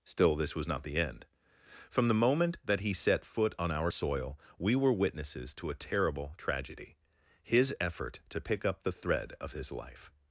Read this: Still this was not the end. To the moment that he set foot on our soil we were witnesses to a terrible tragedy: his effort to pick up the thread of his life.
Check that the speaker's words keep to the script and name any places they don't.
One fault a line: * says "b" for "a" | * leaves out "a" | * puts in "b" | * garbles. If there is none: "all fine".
* says "From" for "To"